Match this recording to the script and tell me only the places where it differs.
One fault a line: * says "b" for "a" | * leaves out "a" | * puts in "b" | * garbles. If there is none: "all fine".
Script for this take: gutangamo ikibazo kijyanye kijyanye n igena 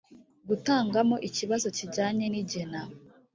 * leaves out "kijyanye"